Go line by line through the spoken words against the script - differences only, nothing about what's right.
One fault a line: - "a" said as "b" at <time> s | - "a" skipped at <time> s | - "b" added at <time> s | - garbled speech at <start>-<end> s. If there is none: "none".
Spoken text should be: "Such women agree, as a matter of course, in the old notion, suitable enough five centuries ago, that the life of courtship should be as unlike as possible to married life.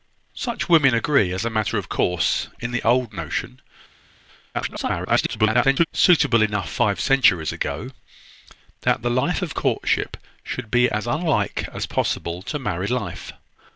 - garbled speech at 4.5-5.9 s